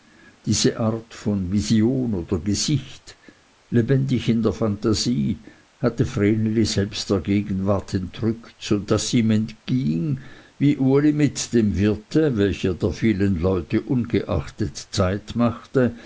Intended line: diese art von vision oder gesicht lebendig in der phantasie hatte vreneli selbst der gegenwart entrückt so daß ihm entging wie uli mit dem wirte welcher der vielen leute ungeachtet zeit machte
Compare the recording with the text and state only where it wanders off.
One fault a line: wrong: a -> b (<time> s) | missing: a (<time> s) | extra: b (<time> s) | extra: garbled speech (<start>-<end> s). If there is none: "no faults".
no faults